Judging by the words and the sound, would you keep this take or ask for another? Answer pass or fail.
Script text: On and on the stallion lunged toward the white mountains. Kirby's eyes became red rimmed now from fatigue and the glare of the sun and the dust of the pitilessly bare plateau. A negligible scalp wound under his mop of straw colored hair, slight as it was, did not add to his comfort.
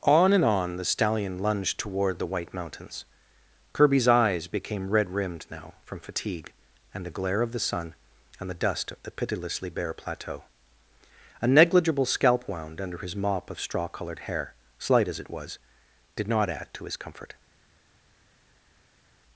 pass